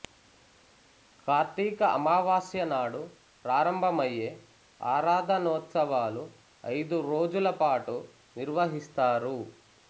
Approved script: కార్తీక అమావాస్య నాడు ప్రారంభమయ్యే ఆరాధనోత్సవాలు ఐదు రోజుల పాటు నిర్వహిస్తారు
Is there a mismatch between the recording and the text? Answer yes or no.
no